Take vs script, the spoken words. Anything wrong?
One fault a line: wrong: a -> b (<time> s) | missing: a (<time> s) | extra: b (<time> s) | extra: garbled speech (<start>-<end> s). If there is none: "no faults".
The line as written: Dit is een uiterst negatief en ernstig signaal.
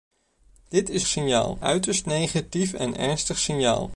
wrong: een -> signaal (1.1 s)